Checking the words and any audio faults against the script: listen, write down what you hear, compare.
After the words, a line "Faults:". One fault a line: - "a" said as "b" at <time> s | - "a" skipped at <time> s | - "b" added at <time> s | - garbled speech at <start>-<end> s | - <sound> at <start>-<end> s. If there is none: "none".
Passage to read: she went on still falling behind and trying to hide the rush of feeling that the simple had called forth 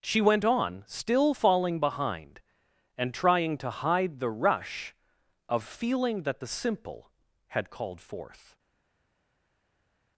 she went on still falling behind and trying to hide the rush of feeling that the simple had called forth
Faults:
none